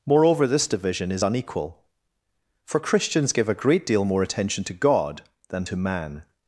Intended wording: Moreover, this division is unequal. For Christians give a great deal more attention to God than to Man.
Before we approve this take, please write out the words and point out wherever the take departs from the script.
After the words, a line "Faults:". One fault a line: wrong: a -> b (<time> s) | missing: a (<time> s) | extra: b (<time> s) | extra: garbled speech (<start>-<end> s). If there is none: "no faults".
Moreover, this division is unequal. For Christians give a great deal more attention to God than to Man.
Faults:
no faults